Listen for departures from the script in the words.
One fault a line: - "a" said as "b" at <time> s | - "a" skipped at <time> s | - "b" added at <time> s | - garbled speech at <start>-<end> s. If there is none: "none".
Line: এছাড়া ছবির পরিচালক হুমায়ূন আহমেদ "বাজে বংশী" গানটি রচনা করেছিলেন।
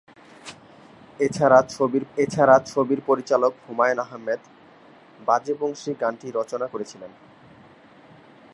- "এছাড়া ছবির" added at 2.2 s